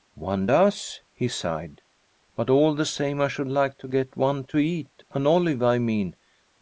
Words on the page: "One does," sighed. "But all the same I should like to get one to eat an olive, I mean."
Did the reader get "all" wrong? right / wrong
right